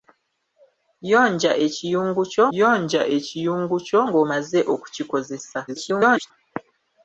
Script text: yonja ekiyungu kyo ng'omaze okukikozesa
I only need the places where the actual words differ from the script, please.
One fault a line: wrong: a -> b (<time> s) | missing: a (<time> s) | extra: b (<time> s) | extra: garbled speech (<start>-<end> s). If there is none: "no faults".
extra: yonja ekiyungu kyo (2.6 s)
extra: garbled speech (5.7-6.3 s)